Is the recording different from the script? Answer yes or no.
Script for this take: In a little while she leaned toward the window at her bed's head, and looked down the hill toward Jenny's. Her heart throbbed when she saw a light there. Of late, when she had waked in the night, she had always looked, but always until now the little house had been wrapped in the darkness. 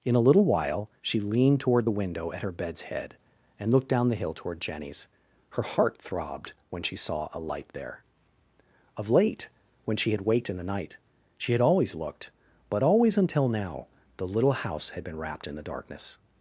no